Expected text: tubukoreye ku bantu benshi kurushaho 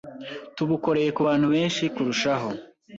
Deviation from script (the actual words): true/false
false